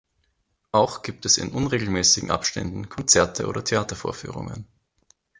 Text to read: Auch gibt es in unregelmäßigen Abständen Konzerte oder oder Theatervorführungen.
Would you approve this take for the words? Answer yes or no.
no